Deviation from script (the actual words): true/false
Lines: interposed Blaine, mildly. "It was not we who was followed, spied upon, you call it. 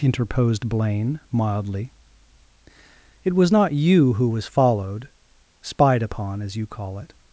true